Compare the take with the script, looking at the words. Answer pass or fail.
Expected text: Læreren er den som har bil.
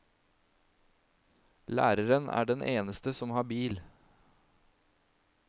fail